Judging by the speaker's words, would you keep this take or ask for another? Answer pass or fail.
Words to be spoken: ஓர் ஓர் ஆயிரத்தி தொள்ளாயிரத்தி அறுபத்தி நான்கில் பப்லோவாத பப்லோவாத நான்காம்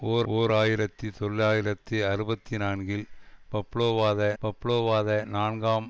pass